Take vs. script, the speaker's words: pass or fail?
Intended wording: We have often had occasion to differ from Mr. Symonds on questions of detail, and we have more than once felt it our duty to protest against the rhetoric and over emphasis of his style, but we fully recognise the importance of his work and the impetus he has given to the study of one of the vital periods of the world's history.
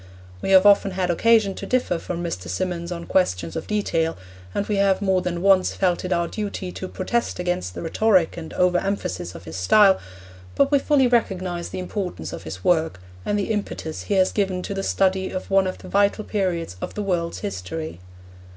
pass